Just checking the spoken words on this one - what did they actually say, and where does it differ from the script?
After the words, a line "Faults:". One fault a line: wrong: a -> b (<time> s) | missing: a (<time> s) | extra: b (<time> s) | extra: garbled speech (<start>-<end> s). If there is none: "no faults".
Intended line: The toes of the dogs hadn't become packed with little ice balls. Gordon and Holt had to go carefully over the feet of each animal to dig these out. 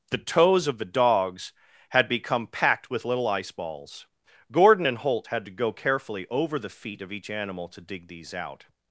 The toes of the dogs had become packed with little ice balls. Gordon and Holt had to go carefully over the feet of each animal to dig these out.
Faults:
wrong: hadn't -> had (1.9 s)